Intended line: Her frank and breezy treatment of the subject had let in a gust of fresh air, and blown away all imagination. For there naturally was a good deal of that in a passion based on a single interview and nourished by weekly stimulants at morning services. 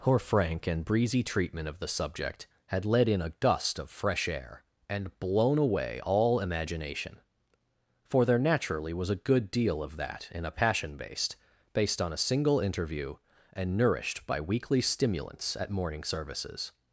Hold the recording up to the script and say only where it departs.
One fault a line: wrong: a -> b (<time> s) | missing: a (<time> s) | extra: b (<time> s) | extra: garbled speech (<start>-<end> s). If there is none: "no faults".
extra: based (11.7 s)